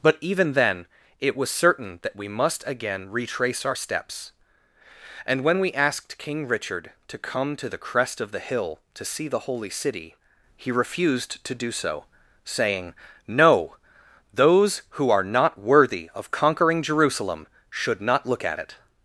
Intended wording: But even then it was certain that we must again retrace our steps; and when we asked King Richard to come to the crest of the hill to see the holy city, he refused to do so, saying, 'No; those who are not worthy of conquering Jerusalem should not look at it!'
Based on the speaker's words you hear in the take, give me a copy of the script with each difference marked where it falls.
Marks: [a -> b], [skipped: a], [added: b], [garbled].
But even then it was certain that we must again retrace our steps; and when we asked King Richard to come to the crest of the hill to see the holy city, he refused to do so, saying, 'No; those who are not worthy of conquering Jerusalem should not look at it!'